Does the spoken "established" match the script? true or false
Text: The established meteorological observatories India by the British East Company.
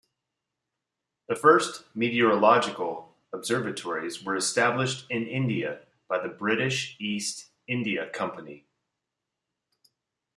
false